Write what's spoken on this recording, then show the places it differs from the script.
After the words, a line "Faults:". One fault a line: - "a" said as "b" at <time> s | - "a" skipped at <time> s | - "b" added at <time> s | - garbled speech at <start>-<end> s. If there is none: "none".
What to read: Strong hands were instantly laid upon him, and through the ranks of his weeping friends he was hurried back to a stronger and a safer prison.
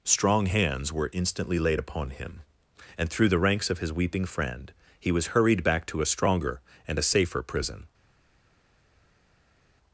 Strong hands were instantly laid upon him, and through the ranks of his weeping friend he was hurried back to a stronger and a safer prison.
Faults:
- "friends" said as "friend" at 4.3 s